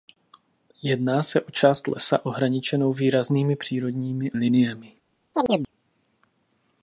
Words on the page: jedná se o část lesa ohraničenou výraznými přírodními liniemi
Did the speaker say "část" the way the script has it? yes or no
yes